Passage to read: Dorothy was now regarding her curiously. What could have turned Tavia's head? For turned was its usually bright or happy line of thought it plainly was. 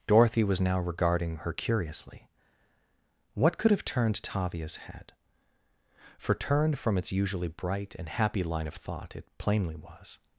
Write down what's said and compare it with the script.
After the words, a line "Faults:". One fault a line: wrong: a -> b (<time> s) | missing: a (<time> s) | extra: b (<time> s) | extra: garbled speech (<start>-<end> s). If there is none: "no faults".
Dorothy was now regarding her curiously. What could have turned Tavia's head? For turned from its usually bright and happy line of thought it plainly was.
Faults:
wrong: was -> from (6.8 s)
wrong: or -> and (8.0 s)